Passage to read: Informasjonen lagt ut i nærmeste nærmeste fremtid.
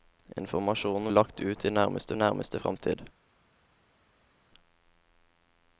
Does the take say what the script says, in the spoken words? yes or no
yes